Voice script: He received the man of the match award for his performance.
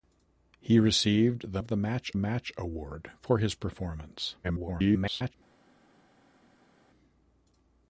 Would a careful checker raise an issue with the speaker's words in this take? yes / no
yes